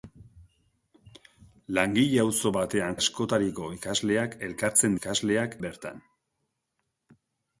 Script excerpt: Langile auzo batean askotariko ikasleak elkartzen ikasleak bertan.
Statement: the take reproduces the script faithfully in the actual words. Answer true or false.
true